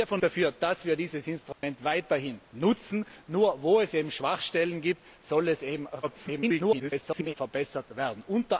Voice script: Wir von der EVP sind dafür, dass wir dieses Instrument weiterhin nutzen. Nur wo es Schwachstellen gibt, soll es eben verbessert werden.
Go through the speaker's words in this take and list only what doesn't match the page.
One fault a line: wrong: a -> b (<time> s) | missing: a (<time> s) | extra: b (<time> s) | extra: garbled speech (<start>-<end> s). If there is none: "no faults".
missing: der EVP sind (0.2 s)
extra: garbled speech (6.0-7.3 s)